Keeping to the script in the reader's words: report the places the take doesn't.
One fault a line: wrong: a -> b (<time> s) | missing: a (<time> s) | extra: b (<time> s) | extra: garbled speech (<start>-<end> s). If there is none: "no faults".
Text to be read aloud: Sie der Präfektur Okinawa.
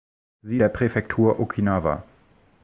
no faults